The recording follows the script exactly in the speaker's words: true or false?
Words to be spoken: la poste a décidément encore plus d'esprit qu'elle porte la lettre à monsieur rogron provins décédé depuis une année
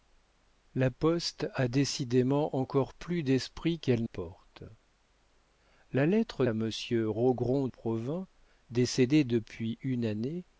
true